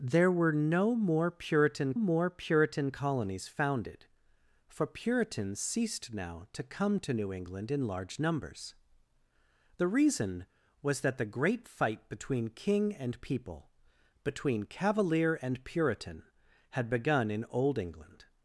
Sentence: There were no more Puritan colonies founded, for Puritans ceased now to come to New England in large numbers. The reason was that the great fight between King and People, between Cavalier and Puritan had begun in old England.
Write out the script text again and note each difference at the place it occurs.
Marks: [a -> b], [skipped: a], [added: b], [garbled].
There were no more Puritan [added: more Puritan] colonies founded, for Puritans ceased now to come to New England in large numbers. The reason was that the great fight between King and People, between Cavalier and Puritan had begun in old England.